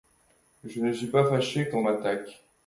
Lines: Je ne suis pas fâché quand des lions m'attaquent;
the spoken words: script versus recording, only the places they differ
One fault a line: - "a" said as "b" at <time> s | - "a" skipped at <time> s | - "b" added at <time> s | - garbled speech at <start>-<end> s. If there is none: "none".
- "des lions" skipped at 1.8 s